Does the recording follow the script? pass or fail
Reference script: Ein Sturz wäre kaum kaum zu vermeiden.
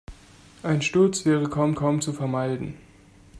pass